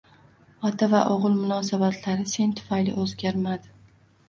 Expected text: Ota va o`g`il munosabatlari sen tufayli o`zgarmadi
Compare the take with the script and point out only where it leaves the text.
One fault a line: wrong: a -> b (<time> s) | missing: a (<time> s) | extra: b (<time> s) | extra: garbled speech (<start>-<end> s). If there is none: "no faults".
no faults